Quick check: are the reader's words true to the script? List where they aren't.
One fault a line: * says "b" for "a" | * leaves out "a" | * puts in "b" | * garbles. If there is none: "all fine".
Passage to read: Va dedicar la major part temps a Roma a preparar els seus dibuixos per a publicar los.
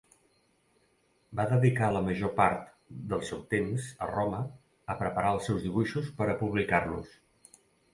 * puts in "del seu"